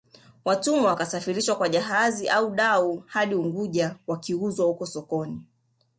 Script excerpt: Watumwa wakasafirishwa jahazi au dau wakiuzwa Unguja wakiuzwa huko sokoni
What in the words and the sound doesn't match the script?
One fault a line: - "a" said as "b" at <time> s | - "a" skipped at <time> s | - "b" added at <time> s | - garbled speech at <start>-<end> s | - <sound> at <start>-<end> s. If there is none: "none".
- "kwa" added at 1.5 s
- "wakiuzwa" said as "hadi" at 3.1 s